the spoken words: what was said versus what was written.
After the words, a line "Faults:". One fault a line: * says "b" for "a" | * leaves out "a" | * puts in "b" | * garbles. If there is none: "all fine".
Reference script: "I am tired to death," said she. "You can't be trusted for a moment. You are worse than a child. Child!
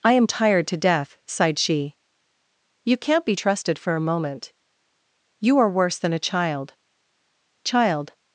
"I am tired to death," sighed she. "You can't be trusted for a moment. You are worse than a child. Child!
Faults:
* says "sighed" for "said"